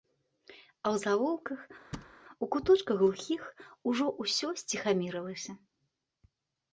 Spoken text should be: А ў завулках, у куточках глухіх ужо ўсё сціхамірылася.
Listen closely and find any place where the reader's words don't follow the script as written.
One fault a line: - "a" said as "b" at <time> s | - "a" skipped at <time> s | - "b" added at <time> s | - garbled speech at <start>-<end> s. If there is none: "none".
none